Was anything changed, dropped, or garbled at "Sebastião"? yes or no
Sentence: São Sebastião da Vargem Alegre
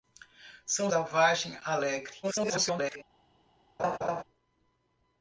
yes